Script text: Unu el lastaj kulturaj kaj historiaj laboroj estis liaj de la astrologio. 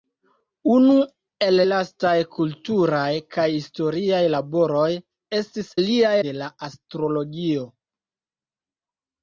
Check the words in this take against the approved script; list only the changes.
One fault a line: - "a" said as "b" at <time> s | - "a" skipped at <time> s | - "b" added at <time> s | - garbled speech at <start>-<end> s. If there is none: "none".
none